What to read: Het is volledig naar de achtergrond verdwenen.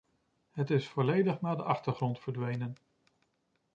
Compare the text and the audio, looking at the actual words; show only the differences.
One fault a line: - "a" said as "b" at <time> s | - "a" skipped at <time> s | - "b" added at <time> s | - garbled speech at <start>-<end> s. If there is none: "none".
none